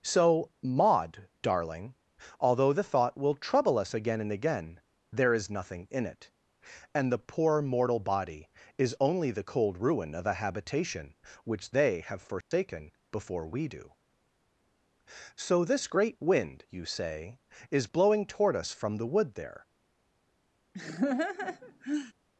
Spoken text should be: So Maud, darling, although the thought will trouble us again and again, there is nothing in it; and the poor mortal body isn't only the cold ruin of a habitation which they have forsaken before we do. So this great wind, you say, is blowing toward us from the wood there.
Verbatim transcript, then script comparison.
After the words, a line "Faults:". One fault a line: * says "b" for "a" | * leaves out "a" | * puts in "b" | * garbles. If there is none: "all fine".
So Maud, darling, although the thought will trouble us again and again, there is nothing in it; and the poor mortal body is only the cold ruin of a habitation which they have forsaken before we do. So this great wind, you say, is blowing toward us from the wood there.
Faults:
* says "is" for "isn't"